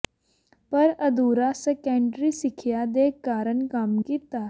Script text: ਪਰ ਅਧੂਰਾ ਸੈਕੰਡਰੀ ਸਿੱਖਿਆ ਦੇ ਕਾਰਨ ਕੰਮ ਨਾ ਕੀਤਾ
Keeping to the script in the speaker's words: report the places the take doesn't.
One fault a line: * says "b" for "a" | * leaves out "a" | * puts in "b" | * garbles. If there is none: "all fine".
* leaves out "ਨਾ"